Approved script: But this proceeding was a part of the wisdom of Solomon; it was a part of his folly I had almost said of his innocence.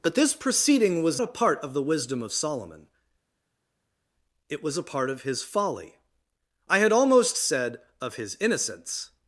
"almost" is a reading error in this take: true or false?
false